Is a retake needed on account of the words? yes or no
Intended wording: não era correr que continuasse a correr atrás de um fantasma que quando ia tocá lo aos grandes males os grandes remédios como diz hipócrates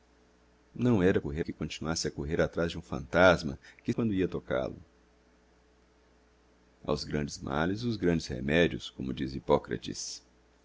no